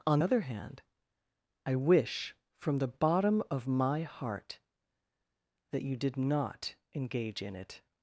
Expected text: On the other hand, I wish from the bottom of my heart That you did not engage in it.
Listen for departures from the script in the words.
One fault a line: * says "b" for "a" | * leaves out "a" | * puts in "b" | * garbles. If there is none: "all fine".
* leaves out "the"